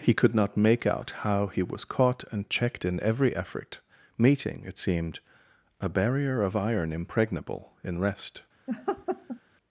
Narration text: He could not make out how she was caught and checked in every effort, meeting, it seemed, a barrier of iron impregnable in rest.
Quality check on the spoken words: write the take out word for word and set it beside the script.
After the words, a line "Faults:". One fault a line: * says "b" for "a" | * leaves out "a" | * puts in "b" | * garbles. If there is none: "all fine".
He could not make out how he was caught and checked in every effort, meeting, it seemed, a barrier of iron impregnable in rest.
Faults:
* says "he" for "she"